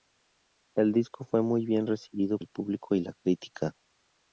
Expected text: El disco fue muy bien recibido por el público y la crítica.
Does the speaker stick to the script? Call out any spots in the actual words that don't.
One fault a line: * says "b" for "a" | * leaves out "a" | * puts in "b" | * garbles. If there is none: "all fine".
* leaves out "por"